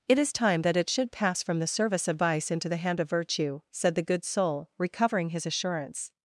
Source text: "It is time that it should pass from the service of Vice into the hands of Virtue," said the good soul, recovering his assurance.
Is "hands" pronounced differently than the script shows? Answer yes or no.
yes